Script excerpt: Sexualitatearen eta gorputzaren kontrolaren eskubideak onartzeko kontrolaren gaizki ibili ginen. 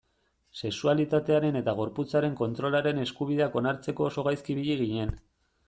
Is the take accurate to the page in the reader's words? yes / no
no